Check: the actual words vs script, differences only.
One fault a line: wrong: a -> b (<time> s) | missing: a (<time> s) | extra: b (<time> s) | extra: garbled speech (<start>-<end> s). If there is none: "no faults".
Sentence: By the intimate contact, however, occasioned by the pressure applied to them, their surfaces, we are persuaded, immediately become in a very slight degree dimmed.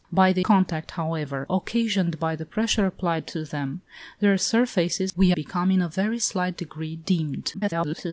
missing: intimate (0.5 s)
missing: are persuaded immediately (5.3 s)
extra: garbled speech (7.5-8.1 s)